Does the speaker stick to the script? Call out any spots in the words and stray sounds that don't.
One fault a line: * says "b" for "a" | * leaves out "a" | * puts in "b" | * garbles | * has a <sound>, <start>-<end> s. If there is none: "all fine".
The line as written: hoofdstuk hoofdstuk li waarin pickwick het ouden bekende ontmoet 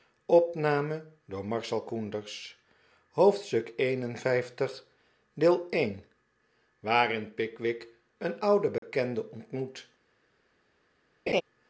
* leaves out "hoofdstuk"
* says "een" for "het"
* has a dropout, 8.8-8.8 s
* has a laugh, 11.3-11.4 s